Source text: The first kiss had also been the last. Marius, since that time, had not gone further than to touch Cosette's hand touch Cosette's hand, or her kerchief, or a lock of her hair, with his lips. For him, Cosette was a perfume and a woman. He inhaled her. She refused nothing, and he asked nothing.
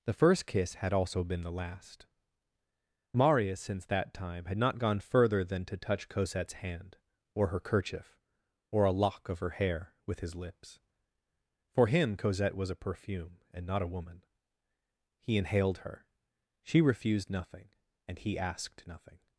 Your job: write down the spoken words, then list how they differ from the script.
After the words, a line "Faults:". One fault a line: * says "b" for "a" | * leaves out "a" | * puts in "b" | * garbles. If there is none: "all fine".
The first kiss had also been the last. Marius, since that time, had not gone further than to touch Cosette's hand, or her kerchief, or a lock of her hair, with his lips. For him, Cosette was a perfume and not a woman. He inhaled her. She refused nothing, and he asked nothing.
Faults:
* leaves out "touch Cosette's hand"
* puts in "not"